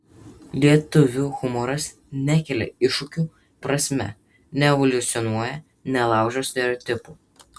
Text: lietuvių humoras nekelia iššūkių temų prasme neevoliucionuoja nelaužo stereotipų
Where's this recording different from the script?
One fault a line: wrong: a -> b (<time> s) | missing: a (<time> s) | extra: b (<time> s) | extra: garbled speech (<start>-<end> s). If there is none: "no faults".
missing: temų (3.3 s)